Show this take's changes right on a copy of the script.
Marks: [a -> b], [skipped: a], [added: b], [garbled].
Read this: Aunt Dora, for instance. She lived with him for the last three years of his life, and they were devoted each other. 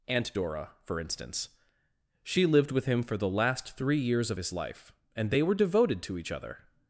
Aunt Dora, for instance. She lived with him for the last three years of his life, and they were devoted [added: to] each other.